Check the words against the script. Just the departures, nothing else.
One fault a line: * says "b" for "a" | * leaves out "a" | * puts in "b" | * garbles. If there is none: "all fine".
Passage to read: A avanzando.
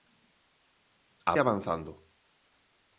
all fine